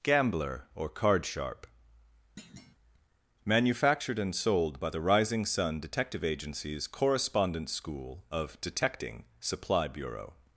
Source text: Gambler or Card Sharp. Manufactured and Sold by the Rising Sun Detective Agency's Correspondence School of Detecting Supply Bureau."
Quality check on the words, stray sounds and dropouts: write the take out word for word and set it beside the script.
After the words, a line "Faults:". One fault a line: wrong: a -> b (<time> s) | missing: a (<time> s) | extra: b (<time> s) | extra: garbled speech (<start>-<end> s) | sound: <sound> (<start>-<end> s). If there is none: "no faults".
Gambler or Card Sharp. Manufactured and Sold by the Rising Sun Detective Agency's Correspondence School of Detecting Supply Bureau."
Faults:
sound: thud (2.4-2.8 s)